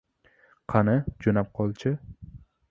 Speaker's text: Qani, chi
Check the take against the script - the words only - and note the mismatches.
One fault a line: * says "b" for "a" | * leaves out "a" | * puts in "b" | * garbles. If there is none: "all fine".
* puts in "jo‘nab qol"